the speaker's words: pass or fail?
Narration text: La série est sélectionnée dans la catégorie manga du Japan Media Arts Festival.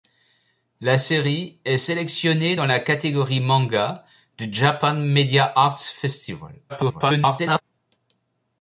fail